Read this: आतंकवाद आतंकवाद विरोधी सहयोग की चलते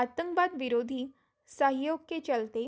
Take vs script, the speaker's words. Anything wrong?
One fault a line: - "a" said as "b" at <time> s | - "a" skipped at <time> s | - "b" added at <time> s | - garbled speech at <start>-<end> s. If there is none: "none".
- "आतंकवाद" skipped at 0.5 s
- "की" said as "के" at 2.1 s